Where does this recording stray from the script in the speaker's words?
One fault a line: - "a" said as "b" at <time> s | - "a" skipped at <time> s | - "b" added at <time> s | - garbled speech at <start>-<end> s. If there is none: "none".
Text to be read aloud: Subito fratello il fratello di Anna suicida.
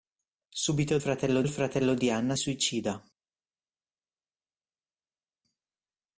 none